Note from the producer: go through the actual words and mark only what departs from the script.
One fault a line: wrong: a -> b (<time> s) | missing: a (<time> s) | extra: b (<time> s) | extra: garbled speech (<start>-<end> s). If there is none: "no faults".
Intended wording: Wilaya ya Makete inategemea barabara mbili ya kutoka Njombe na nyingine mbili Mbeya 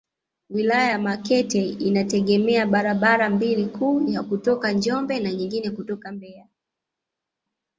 extra: kuu (3.6 s)
wrong: mbili -> kutoka (5.7 s)